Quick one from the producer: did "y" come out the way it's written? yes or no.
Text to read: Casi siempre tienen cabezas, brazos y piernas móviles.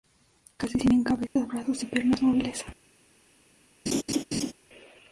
yes